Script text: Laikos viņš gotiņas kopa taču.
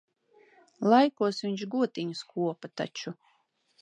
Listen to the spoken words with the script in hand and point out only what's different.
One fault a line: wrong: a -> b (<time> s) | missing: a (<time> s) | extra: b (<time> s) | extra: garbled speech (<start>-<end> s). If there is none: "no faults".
no faults